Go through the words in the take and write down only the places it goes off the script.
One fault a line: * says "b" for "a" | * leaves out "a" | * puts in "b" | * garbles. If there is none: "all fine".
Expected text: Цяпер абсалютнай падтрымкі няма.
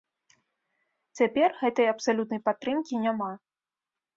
* puts in "гэтай"